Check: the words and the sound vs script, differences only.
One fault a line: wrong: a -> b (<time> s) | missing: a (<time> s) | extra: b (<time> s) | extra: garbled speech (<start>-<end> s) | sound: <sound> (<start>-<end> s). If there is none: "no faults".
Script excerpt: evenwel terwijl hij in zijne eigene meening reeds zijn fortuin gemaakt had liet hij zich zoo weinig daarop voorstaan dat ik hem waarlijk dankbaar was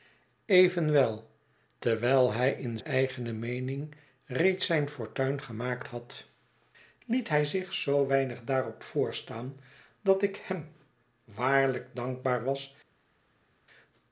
missing: zijne (2.8 s)